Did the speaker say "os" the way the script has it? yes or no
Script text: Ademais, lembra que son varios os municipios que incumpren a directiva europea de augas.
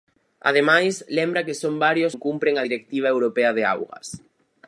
no